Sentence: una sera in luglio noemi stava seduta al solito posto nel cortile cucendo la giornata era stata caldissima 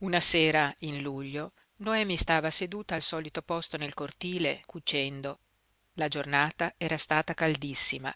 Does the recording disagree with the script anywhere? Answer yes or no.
no